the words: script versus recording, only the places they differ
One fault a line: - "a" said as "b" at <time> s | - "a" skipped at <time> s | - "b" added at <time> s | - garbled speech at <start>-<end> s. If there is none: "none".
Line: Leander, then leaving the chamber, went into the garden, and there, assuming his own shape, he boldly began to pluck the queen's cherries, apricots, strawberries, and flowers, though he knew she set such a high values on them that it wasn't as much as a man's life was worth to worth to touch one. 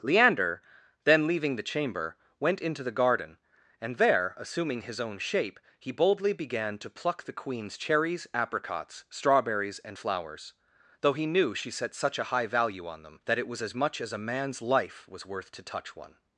- "values" said as "value" at 12.5 s
- "wasn't" said as "was" at 13.5 s
- "worth to" skipped at 15.6 s